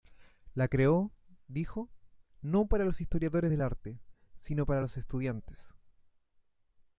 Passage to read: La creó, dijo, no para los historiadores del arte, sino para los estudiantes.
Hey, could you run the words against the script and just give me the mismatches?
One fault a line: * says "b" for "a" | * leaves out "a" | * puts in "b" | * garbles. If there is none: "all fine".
all fine